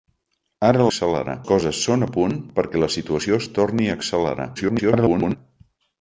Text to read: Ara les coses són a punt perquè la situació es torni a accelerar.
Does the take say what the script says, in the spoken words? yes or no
no